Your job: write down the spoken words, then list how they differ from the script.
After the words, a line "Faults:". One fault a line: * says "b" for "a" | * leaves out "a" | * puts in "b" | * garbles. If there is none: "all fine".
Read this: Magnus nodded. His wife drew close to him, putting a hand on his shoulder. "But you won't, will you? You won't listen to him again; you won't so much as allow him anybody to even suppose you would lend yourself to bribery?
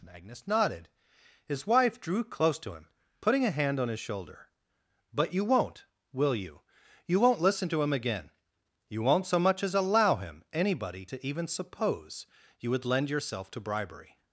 Magnus nodded. His wife drew close to him, putting a hand on his shoulder. "But you won't, will you? You won't listen to him again; you won't so much as allow him anybody to even suppose you would lend yourself to bribery?
Faults:
all fine